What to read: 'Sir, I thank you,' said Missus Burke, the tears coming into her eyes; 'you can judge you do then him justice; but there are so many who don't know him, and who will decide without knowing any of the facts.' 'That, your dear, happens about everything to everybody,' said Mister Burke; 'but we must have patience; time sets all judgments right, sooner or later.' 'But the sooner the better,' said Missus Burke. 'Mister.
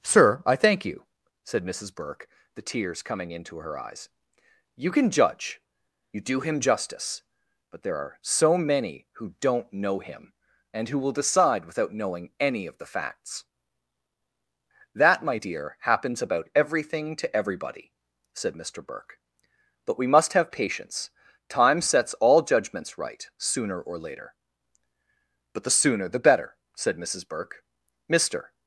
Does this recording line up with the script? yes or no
no